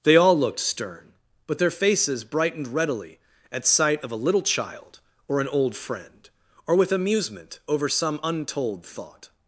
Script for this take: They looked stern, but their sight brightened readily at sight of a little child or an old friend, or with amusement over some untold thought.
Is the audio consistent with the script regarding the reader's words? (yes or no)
no